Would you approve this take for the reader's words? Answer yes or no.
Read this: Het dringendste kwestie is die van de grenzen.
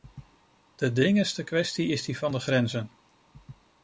no